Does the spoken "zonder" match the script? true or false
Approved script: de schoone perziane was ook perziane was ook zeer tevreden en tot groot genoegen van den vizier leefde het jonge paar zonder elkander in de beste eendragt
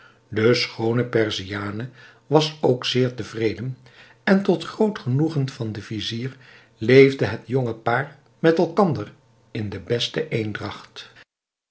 false